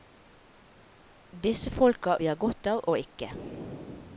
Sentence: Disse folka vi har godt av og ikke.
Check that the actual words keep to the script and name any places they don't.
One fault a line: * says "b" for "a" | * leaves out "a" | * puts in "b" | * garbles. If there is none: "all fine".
all fine